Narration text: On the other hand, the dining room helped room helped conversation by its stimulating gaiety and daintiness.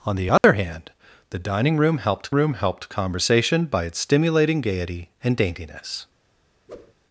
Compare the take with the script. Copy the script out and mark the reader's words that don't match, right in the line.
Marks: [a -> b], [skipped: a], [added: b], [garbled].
On the other hand, the dining room helped room helped conversation by its stimulating gaiety and daintiness.